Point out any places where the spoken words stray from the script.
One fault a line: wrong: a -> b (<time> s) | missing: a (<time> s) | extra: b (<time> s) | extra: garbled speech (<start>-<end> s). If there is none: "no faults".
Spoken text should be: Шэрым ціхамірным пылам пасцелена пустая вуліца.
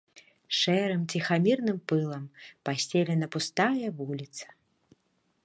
no faults